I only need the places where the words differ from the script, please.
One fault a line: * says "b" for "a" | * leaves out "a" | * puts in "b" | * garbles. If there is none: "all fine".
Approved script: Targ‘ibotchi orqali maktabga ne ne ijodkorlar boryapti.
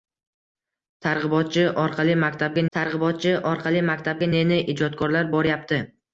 * puts in "targ‘ibotchi orqali maktabga"